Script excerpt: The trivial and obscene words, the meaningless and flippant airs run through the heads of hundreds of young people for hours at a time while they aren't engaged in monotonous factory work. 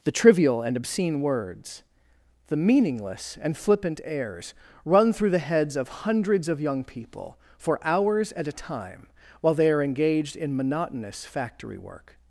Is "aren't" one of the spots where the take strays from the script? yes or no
yes